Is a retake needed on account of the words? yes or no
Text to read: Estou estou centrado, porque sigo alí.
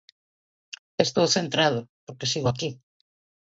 yes